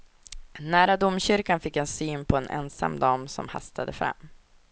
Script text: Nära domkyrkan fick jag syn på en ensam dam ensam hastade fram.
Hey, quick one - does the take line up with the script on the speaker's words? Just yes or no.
no